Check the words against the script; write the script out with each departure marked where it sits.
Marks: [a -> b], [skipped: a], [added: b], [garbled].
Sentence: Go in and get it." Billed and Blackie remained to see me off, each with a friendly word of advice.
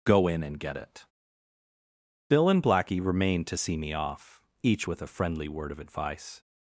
Go in and get it." [Billed -> Bill] and Blackie remained to see me off, each with a friendly word of advice.